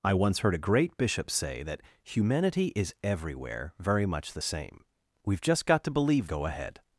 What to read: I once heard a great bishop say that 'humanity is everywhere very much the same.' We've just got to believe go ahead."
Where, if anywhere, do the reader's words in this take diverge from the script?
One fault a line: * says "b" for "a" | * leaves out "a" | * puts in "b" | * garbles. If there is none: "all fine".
all fine